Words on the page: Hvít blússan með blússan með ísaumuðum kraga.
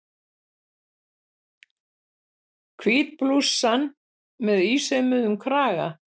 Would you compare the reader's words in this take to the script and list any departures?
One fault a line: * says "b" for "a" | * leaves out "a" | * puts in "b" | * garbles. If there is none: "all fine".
* leaves out "blússan með"